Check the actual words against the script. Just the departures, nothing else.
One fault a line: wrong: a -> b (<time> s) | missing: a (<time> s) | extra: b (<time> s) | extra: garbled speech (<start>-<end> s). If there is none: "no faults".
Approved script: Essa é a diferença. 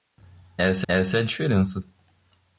extra: essa (0.9 s)